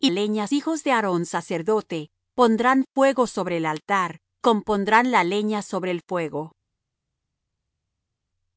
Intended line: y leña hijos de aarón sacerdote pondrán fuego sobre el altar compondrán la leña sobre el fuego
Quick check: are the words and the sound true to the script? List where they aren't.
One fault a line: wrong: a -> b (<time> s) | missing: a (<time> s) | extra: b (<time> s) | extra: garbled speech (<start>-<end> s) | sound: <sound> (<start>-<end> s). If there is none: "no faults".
no faults